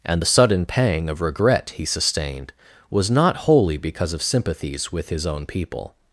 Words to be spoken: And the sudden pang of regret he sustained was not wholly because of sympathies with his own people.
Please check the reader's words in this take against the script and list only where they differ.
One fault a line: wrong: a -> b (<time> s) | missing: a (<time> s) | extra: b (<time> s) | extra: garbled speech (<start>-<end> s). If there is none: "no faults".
no faults